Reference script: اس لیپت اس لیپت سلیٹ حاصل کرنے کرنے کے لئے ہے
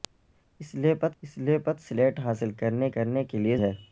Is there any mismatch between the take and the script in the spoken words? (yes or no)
no